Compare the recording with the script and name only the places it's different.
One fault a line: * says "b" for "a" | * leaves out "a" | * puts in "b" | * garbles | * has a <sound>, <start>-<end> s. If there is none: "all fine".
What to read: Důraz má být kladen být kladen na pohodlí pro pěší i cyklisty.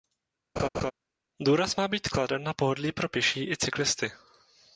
* has a laugh, 0.6-0.9 s
* leaves out "být kladen"